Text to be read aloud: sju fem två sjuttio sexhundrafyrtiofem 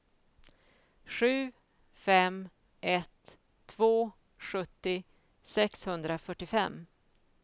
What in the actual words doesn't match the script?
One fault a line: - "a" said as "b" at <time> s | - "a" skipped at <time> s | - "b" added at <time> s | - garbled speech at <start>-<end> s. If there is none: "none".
- "ett" added at 2.8 s